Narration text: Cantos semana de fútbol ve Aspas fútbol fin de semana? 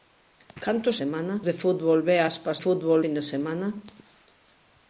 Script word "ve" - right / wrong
right